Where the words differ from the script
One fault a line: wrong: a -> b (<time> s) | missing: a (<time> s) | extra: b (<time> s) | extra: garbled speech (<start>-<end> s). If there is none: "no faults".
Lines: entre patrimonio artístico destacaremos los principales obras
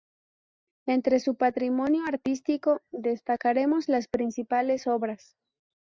extra: su (1.2 s)
wrong: los -> las (3.9 s)